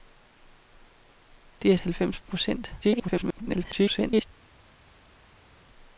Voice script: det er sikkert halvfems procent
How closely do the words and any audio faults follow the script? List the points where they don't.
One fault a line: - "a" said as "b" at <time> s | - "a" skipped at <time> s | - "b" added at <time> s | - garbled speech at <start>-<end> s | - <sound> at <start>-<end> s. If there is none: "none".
- "sikkert" skipped at 1.8 s
- garbled speech at 2.8-4.3 s